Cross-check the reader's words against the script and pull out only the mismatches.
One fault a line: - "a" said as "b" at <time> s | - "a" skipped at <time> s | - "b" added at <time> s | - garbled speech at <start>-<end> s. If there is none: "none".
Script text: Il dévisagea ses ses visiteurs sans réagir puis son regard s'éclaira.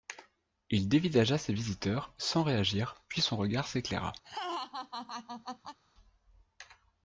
- "ses" skipped at 1.5 s